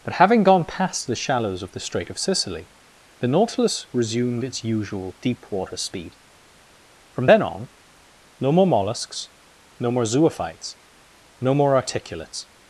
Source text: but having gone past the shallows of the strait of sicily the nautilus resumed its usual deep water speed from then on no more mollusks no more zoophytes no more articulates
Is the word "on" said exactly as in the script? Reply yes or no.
yes